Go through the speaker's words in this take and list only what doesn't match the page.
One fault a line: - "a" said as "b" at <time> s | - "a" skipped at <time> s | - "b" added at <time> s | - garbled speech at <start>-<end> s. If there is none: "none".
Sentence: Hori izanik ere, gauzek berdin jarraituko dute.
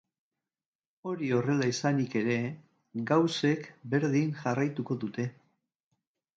- "horrela" added at 1.4 s